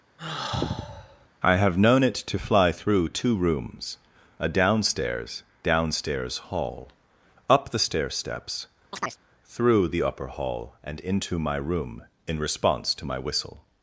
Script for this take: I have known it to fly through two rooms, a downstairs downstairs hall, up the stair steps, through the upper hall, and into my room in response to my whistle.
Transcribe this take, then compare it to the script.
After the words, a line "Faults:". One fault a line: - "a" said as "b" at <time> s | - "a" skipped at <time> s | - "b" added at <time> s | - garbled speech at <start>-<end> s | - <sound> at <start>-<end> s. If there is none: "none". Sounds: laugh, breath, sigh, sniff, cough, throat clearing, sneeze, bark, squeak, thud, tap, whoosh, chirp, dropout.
I have known it to fly through two rooms, a downstairs downstairs hall, up the stair steps, through the upper hall, and into my room in response to my whistle.
Faults:
- sigh at 0.2-1.3 s
- chirp at 8.9-9.2 s